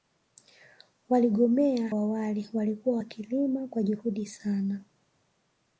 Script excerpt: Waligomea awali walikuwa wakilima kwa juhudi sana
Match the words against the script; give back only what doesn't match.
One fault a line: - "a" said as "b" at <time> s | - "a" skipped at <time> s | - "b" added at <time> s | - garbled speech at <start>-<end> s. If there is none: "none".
none